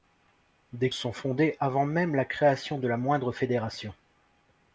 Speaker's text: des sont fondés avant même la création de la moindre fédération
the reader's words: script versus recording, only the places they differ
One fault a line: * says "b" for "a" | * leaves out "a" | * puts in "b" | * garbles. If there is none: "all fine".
all fine